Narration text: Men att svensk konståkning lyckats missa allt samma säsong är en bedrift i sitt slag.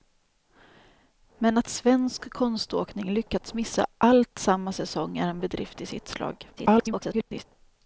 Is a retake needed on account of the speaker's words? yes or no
yes